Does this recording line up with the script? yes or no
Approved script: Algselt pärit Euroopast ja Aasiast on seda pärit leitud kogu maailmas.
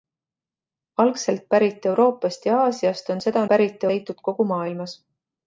yes